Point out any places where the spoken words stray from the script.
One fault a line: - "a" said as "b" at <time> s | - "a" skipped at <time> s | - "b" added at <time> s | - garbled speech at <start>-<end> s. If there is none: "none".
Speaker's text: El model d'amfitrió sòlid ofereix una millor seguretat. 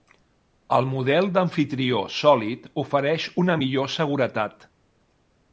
none